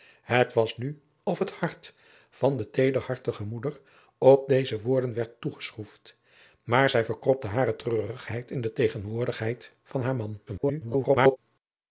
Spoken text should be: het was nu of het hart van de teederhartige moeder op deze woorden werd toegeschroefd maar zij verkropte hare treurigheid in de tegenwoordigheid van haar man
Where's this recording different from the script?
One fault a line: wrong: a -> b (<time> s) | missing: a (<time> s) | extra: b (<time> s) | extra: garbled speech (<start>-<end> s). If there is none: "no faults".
extra: garbled speech (10.5-11.4 s)